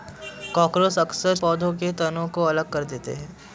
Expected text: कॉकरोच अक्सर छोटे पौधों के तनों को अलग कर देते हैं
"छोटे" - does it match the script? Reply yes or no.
no